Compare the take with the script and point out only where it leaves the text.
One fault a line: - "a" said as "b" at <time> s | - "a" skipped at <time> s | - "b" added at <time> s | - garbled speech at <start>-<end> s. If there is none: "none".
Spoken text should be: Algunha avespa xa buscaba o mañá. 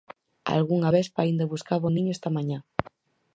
- "xa" said as "aínda" at 1.2 s
- "niño esta" added at 1.9 s